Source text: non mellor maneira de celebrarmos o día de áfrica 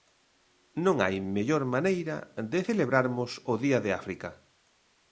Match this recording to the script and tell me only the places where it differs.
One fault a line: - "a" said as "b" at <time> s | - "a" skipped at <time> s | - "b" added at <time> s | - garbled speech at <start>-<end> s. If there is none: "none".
- "hai" added at 1.0 s